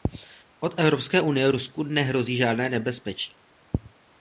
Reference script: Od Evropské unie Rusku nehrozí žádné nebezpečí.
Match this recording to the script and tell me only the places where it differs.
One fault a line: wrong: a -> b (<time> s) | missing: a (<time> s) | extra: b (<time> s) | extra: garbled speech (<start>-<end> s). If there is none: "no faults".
no faults